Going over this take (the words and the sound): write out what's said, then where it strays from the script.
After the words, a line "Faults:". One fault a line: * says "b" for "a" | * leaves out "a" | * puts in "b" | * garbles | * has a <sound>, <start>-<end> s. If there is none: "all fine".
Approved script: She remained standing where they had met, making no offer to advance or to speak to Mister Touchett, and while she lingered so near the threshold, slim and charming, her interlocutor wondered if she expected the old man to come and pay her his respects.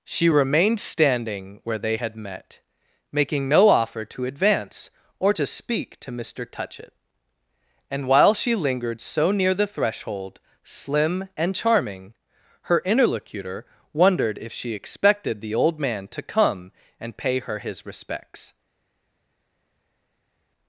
She remained standing where they had met, making no offer to advance or to speak to Mister Touchett, and while she lingered so near the threshold, slim and charming, her interlocutor wondered if she expected the old man to come and pay her his respects.
Faults:
all fine